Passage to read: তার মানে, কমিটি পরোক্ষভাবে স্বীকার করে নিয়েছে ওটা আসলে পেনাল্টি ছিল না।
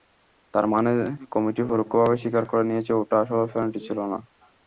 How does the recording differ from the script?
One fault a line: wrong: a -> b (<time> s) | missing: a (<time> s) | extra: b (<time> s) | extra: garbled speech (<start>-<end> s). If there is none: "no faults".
no faults